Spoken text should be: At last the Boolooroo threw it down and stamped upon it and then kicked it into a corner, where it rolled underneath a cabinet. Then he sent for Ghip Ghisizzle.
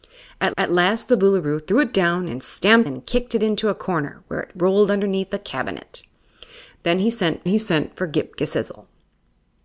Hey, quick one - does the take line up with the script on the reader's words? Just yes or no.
no